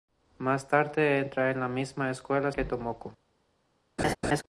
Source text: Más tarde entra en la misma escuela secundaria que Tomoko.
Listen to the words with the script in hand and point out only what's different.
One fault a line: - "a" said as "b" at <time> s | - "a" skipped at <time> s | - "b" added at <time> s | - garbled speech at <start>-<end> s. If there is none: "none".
- "secundaria" skipped at 2.5 s